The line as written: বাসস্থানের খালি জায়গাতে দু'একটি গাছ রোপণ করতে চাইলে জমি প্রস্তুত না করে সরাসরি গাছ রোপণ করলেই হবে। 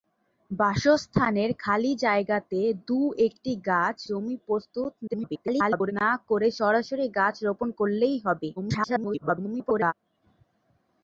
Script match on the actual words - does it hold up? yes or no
no